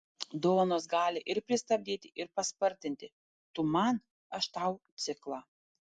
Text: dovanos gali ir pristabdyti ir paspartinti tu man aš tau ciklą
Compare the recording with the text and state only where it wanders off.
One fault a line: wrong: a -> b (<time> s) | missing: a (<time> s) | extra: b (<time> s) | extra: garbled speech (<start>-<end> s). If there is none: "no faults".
no faults